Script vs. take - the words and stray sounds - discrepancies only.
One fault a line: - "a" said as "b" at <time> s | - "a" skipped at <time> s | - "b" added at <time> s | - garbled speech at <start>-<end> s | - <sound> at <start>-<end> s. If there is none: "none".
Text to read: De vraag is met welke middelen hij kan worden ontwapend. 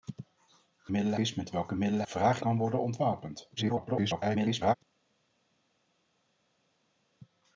- "vraag" said as "middelen" at 0.9 s
- "hij" said as "vraag" at 2.1 s
- garbled speech at 3.6-4.7 s